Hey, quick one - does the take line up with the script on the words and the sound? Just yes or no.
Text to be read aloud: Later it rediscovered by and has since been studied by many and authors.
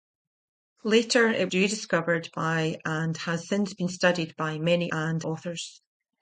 yes